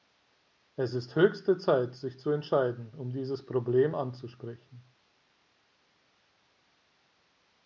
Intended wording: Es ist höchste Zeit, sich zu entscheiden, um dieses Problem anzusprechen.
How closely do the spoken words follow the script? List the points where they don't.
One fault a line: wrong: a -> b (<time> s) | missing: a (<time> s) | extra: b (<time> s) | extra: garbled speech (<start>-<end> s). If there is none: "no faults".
no faults